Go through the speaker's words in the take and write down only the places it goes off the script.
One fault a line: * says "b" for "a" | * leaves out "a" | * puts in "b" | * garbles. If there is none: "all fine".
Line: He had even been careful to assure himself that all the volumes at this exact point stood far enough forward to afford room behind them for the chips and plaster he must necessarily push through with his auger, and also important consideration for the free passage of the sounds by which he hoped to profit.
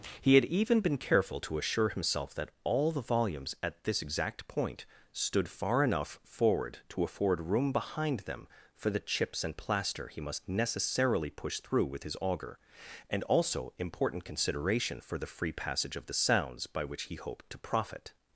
all fine